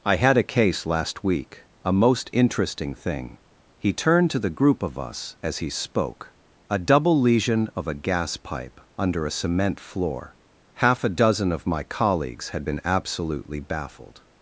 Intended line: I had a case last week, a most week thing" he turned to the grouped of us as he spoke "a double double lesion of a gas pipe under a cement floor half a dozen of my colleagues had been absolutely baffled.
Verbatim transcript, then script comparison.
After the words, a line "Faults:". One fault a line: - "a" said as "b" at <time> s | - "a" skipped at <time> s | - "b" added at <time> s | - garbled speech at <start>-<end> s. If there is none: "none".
I had a case last week, a most interesting thing" he turned to the group of us as he spoke "a double lesion of a gas pipe under a cement floor half a dozen of my colleagues had been absolutely baffled.
Faults:
- "week" said as "interesting" at 2.3 s
- "grouped" said as "group" at 4.5 s
- "double" skipped at 7.2 s